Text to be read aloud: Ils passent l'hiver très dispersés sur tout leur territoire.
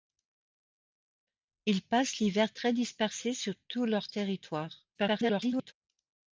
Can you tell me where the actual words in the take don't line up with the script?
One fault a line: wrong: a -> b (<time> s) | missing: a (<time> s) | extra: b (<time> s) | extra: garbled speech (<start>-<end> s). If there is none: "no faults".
extra: garbled speech (4.9-5.7 s)